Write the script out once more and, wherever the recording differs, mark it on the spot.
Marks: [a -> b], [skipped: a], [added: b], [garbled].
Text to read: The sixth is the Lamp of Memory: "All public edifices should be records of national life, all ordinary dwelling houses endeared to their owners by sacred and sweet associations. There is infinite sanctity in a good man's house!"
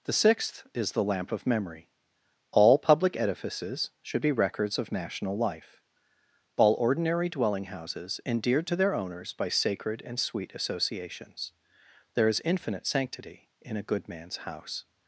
The sixth is the Lamp of Memory: "All public edifices should be records of national life, all ordinary dwelling houses endeared to their owners by sacred and sweet associations. There is infinite sanctity in a good man's house!"